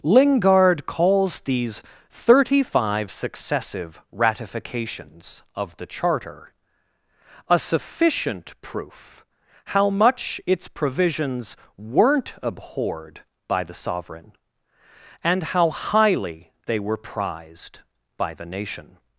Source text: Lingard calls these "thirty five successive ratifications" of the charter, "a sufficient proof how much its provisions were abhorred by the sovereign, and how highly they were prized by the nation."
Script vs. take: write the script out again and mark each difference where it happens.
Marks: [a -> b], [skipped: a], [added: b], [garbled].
Lingard calls these "thirty five successive ratifications" of the charter, "a sufficient proof how much its provisions [were -> weren't] abhorred by the sovereign, and how highly they were prized by the nation."